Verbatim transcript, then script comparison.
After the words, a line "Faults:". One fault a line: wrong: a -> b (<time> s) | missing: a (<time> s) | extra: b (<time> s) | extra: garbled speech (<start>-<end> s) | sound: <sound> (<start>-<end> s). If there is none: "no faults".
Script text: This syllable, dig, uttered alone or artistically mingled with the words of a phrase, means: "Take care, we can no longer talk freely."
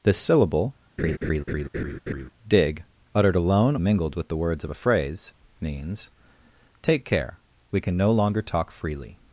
This syllable, dig, uttered alone mingled with the words of a phrase, means: "Take care, we can no longer talk freely."
Faults:
sound: laugh (1.0-2.3 s)
missing: or artistically (3.8 s)